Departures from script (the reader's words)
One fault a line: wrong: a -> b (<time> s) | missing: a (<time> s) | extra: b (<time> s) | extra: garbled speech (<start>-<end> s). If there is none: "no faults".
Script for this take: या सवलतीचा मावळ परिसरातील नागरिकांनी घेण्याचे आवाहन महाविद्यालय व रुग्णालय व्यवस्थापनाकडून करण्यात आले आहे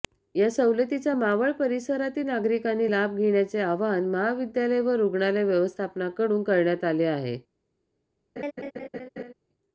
extra: लाभ (2.9 s)